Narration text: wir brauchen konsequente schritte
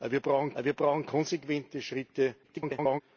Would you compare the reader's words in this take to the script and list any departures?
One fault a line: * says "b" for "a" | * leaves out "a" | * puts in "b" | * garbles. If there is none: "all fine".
* puts in "wir brauchen"
* garbles